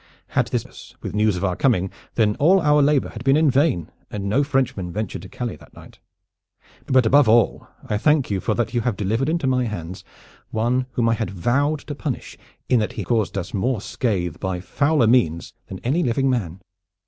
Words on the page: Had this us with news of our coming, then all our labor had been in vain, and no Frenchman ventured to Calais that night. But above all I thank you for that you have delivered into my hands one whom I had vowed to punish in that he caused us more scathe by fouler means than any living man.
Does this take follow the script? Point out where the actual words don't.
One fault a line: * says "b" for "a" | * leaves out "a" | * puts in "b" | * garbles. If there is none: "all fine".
all fine